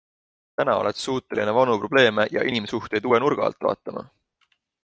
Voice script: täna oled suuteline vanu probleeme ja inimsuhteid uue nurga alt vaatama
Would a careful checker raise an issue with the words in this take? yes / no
no